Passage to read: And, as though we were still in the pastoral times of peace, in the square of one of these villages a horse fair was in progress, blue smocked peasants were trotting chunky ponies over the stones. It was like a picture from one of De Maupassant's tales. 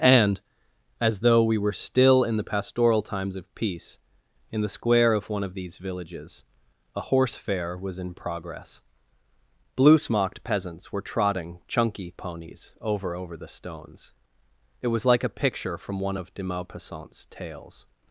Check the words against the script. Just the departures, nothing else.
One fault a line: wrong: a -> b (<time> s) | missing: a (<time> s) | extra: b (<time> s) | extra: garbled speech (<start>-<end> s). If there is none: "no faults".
extra: over (13.1 s)